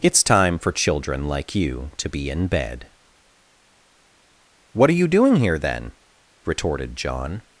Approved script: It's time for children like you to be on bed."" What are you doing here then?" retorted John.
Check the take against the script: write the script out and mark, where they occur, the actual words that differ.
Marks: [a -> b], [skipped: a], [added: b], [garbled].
It's time for children like you to be [on -> in] bed."" What are you doing here then?" retorted John.